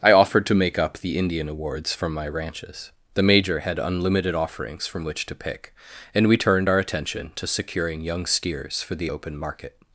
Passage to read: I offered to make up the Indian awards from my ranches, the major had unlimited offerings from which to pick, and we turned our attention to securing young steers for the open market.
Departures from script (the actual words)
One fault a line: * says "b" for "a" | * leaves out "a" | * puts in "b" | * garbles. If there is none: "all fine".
all fine